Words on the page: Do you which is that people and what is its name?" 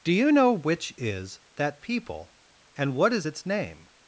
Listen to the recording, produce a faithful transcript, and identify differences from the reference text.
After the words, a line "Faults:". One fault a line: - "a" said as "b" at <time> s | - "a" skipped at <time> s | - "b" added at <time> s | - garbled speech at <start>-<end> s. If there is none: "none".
Do you know which is that people and what is its name?"
Faults:
- "know" added at 0.3 s